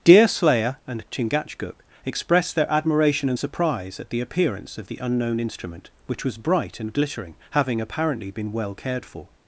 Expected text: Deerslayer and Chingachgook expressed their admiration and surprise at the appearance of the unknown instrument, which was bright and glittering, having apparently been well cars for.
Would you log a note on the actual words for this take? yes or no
yes